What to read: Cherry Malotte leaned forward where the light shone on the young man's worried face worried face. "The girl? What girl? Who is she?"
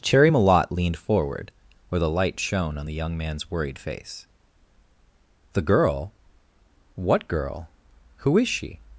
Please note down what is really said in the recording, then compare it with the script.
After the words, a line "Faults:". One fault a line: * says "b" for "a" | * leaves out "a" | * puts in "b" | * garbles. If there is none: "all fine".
Cherry Malotte leaned forward where the light shone on the young man's worried face. "The girl? What girl? Who is she?"
Faults:
* leaves out "worried face"